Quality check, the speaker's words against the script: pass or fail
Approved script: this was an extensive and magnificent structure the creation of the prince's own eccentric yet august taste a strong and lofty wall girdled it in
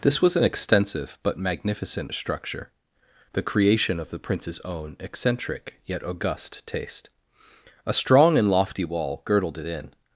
fail